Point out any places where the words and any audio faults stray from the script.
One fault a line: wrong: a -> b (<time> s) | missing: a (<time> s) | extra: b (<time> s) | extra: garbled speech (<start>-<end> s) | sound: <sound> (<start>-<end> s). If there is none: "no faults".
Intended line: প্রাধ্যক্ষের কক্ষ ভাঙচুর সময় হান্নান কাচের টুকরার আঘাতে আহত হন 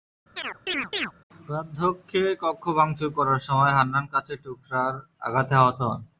sound: chirp (0.4-1.1 s)
extra: করার (3.2 s)